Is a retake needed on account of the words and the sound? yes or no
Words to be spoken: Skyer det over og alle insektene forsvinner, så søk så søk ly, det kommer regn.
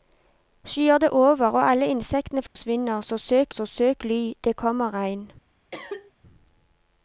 yes